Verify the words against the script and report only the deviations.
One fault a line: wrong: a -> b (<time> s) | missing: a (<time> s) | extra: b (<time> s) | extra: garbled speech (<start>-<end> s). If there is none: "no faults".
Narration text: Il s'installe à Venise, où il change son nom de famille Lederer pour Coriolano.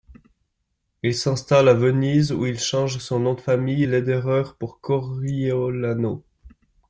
no faults